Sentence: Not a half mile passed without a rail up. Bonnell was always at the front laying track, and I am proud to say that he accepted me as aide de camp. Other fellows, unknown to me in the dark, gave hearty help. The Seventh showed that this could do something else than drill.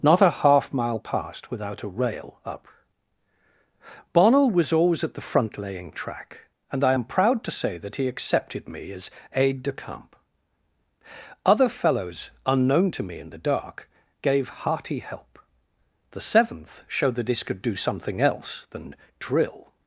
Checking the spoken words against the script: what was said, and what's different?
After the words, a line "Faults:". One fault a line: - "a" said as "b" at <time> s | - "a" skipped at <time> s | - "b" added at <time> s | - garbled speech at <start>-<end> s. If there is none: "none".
Not a half mile passed without a rail up. Bonnell was always at the front laying track, and I am proud to say that he accepted me as aide de camp. Other fellows, unknown to me in the dark, gave hearty help. The Seventh showed that this could do something else than drill.
Faults:
none